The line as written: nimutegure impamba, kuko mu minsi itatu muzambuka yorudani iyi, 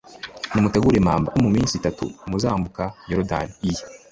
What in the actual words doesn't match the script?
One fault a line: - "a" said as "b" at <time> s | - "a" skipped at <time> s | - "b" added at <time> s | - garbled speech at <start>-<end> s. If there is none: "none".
- "kuko" skipped at 1.3 s